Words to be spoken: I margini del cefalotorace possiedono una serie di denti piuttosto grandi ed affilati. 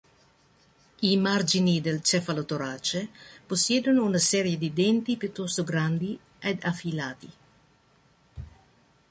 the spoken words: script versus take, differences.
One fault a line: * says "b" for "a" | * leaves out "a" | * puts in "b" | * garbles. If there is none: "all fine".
all fine